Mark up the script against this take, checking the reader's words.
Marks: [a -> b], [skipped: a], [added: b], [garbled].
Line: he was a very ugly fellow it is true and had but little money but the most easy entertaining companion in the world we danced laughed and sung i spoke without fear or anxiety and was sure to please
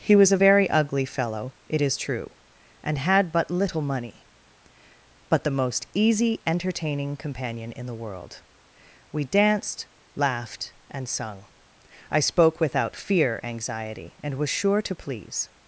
he was a very ugly fellow it is true and had but little money but the most easy entertaining companion in the world we danced laughed and sung i spoke without fear [skipped: or] anxiety and was sure to please